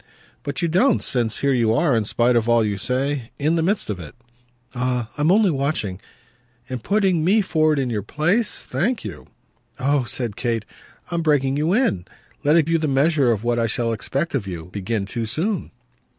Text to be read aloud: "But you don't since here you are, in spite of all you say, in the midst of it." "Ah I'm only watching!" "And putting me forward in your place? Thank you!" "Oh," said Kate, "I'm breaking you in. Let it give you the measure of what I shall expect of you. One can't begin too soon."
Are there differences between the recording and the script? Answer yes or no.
yes